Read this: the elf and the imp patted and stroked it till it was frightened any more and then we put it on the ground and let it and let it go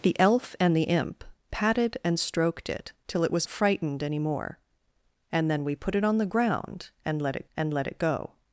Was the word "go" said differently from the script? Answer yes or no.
no